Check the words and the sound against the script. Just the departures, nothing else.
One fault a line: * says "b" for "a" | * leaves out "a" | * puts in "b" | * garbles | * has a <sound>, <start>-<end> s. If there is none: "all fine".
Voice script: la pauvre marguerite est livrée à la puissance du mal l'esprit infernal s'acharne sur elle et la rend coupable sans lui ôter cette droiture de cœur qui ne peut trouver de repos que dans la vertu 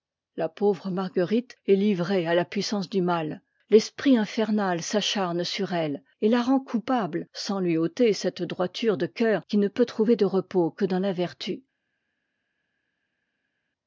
all fine